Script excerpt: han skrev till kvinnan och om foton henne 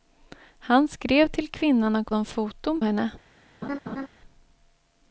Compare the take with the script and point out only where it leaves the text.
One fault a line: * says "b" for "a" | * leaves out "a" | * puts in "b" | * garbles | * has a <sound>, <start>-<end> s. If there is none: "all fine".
* has a laugh, 3.6-4.1 s